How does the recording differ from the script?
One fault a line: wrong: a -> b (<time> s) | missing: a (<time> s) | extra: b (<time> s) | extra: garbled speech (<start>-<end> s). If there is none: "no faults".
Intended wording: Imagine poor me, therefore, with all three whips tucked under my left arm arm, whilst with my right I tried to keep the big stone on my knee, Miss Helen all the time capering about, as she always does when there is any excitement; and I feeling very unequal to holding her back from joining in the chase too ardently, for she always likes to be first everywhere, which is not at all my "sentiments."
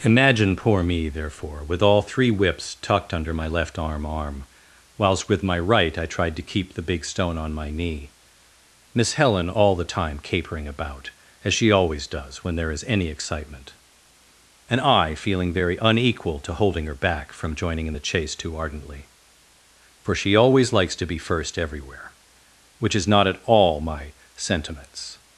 no faults